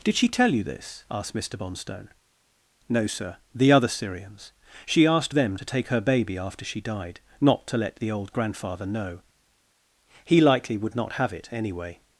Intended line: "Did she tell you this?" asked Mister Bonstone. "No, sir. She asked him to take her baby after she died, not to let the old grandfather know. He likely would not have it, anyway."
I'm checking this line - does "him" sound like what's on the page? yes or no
no